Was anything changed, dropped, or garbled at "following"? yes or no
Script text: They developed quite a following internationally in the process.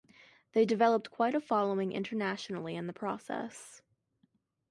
no